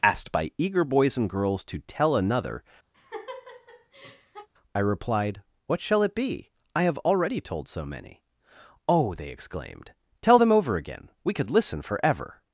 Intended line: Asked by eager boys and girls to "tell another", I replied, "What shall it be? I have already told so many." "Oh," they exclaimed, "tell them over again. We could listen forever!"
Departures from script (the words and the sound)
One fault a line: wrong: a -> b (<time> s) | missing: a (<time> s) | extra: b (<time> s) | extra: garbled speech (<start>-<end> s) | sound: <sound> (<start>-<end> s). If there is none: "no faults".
sound: laugh (2.9-4.5 s)